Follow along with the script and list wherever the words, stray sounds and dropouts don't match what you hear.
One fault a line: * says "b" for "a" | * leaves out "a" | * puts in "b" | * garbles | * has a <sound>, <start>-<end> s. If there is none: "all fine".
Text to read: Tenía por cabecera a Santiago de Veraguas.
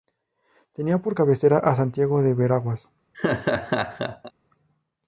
* has a laugh, 3.1-4.3 s